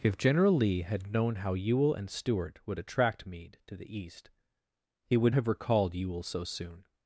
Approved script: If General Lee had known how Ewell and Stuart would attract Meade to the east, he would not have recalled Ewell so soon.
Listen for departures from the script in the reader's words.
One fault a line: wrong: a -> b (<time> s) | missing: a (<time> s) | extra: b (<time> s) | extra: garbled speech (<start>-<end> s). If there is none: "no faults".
missing: not (5.3 s)